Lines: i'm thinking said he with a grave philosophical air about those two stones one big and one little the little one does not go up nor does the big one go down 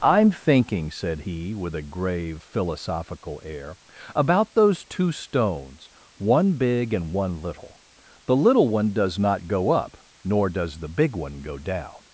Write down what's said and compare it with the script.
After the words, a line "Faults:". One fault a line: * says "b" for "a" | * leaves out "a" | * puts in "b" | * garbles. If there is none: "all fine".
i'm thinking said he with a grave philosophical air about those two stones one big and one little the little one does not go up nor does the big one go down
Faults:
all fine